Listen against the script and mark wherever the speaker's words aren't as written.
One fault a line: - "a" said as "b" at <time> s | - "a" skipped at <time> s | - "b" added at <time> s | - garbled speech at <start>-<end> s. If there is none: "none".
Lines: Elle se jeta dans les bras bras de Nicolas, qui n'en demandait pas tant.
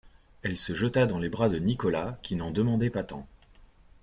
- "bras" skipped at 1.5 s